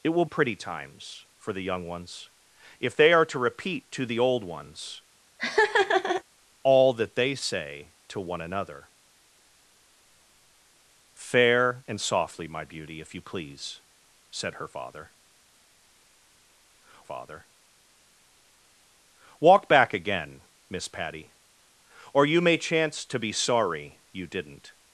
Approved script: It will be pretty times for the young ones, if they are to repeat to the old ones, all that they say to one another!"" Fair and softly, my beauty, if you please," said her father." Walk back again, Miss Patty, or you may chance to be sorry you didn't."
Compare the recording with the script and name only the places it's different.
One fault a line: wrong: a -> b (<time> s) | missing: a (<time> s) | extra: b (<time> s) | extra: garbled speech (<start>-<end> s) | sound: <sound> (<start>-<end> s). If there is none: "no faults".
missing: be (0.2 s)
sound: laugh (5.4-6.2 s)
extra: father (17.0 s)